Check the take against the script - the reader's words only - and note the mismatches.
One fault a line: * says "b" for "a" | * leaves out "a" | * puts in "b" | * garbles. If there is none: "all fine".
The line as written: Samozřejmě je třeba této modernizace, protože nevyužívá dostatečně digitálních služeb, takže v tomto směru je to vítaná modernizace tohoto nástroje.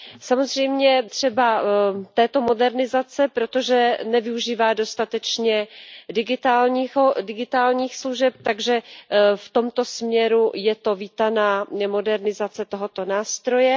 * leaves out "je"